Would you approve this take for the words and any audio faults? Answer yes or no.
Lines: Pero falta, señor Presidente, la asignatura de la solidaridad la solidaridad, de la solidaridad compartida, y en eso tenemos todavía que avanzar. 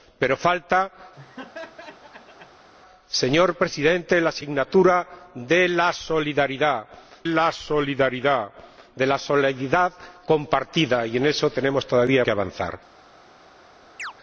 no